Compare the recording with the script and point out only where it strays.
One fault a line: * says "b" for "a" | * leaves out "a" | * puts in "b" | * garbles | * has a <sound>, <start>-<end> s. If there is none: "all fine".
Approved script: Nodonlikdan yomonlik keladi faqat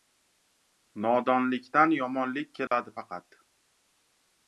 * has a dropout, 2.7-2.7 s